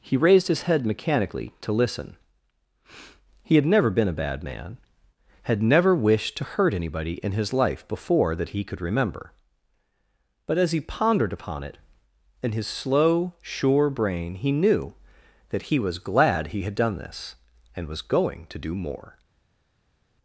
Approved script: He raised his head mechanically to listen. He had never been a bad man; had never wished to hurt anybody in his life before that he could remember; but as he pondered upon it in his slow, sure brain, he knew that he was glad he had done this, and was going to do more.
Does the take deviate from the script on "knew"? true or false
false